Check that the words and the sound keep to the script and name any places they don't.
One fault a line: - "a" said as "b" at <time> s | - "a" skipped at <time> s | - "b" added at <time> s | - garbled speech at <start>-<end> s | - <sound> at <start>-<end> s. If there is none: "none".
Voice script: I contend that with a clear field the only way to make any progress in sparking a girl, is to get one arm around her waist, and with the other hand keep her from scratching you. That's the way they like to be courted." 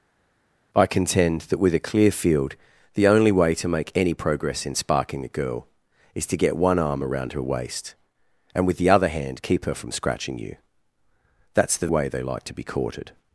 none